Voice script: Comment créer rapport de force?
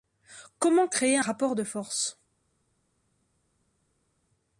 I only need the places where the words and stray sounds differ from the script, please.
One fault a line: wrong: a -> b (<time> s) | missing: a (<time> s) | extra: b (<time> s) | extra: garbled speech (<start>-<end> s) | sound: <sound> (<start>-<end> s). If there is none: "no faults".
no faults